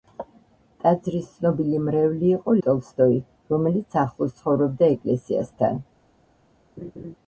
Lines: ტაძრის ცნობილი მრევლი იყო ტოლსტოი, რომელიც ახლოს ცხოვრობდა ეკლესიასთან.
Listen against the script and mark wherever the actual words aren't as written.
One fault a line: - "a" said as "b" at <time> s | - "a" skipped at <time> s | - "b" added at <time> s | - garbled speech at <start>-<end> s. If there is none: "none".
none